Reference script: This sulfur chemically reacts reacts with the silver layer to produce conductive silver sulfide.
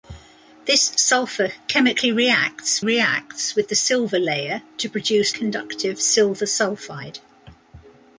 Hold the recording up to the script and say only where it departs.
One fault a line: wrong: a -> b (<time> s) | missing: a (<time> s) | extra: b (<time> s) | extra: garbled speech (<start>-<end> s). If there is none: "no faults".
no faults